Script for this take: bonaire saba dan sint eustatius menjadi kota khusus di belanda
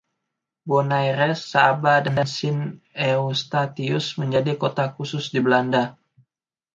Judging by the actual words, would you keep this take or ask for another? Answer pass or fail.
pass